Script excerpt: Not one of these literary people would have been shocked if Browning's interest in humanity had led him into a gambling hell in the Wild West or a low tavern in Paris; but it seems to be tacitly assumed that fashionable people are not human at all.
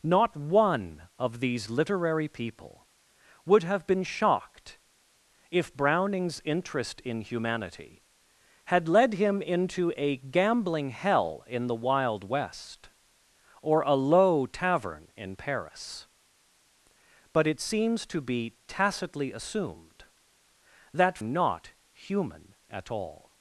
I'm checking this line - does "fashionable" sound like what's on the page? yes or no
no